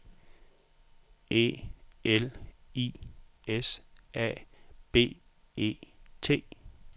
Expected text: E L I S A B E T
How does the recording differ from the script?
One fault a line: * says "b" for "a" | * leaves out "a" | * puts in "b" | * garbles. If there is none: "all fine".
all fine